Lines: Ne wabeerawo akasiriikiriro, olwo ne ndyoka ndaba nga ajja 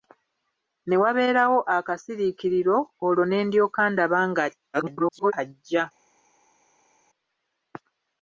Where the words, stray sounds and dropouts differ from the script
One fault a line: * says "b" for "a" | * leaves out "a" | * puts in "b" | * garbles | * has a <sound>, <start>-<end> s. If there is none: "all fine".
* garbles